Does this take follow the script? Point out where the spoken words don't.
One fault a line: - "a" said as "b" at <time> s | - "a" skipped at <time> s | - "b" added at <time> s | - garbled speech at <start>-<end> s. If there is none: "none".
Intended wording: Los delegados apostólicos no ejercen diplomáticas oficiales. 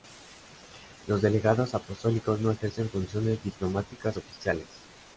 - "funciones" added at 2.9 s